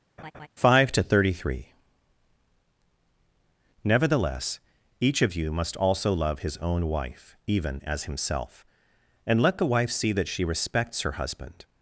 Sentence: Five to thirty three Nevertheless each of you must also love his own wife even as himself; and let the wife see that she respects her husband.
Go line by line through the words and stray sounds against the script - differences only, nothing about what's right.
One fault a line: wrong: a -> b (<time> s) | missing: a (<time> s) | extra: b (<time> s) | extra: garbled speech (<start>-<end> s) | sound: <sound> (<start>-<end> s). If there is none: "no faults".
sound: laugh (0.2-0.5 s)